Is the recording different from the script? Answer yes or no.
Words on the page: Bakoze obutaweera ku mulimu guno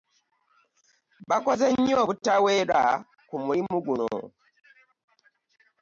yes